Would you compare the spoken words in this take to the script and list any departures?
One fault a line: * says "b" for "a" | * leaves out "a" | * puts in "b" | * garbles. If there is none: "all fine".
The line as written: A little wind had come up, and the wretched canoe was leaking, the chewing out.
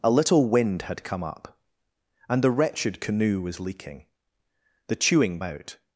all fine